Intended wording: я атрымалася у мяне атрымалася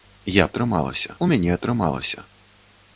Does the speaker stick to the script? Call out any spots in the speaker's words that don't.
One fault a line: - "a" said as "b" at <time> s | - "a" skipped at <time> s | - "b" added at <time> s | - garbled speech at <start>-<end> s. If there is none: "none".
none